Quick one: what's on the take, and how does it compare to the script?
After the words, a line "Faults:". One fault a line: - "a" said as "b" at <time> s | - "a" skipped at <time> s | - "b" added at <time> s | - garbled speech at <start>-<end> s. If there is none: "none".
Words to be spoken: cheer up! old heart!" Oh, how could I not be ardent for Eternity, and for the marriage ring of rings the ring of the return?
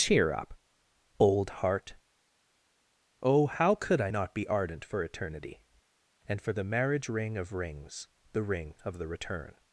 cheer up! old heart!" Oh, how could I not be ardent for Eternity, and for the marriage ring of rings the ring of the return?
Faults:
none